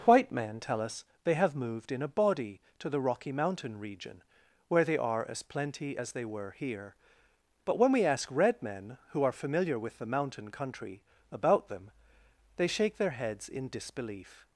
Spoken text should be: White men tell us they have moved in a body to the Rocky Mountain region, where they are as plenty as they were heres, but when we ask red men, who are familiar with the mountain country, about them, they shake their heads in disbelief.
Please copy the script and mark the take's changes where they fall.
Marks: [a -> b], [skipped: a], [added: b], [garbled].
White men tell us they have moved in a body to the Rocky Mountain region, where they are as plenty as they were [heres, -> here] but when we ask red men, who are familiar with the mountain country, about them, they shake their heads in disbelief.